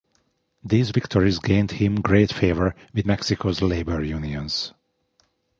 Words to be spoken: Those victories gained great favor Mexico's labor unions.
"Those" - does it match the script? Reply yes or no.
no